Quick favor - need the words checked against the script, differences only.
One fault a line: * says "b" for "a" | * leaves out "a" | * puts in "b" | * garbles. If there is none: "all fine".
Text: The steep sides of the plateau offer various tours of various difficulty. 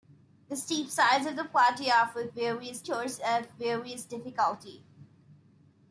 all fine